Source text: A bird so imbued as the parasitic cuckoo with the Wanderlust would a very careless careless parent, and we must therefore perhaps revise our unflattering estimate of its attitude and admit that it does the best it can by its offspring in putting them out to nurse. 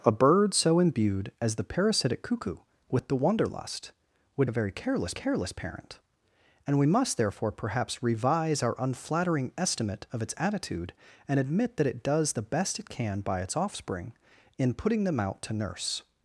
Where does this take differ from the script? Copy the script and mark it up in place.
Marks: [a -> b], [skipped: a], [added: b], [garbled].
A bird so imbued as the parasitic cuckoo with the Wanderlust would a very careless careless parent, and we must therefore perhaps revise our unflattering estimate of its attitude and admit that it does the best it can by its offspring in putting them out to nurse.